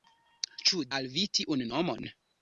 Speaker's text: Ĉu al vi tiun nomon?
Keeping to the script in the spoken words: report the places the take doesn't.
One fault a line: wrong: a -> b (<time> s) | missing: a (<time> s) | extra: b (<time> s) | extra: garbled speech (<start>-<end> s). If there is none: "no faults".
no faults